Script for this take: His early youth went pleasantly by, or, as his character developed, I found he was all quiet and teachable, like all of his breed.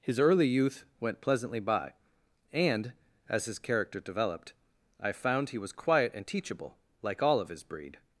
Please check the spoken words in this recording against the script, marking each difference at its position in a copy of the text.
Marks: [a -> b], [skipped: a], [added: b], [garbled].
His early youth went pleasantly by, [or, -> and] as his character developed, I found he was [skipped: all] quiet and teachable, like all of his breed.